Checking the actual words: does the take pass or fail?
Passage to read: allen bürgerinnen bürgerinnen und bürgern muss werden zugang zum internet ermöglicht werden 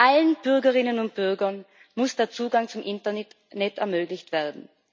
fail